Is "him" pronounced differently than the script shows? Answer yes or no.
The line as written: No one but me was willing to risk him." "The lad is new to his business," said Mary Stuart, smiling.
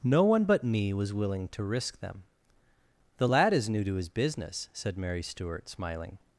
yes